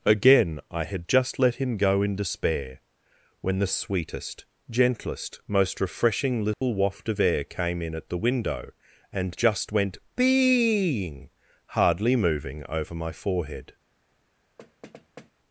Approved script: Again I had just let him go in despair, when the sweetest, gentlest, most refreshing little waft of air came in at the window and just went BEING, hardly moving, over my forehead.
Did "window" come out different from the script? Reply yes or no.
no